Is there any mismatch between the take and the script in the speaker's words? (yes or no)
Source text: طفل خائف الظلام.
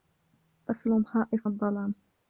no